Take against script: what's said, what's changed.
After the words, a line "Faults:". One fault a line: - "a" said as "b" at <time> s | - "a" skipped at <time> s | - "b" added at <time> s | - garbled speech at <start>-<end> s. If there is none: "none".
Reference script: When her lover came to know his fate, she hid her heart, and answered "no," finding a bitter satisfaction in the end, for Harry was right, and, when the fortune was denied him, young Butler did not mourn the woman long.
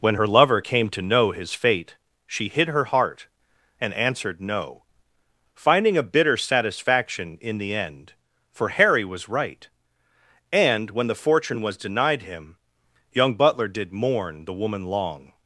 When her lover came to know his fate, she hid her heart, and answered "no," finding a bitter satisfaction in the end, for Harry was right, and, when the fortune was denied him, young Butler did mourn the woman long.
Faults:
- "not" skipped at 13.9 s